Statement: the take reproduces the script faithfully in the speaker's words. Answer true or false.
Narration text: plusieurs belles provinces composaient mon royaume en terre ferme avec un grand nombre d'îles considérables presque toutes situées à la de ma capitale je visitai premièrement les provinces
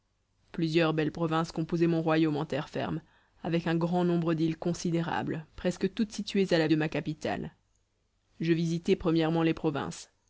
true